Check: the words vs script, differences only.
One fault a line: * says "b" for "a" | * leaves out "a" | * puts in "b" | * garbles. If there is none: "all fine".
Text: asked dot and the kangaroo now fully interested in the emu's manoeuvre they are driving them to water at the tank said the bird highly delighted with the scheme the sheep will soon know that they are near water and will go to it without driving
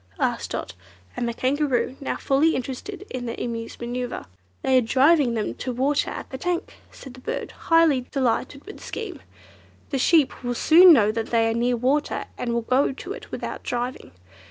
all fine